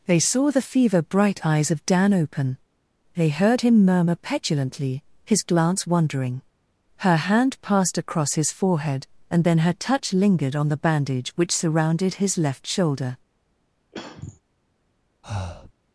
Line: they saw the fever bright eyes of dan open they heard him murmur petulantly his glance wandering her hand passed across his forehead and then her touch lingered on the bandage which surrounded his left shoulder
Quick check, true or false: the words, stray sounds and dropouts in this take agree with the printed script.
false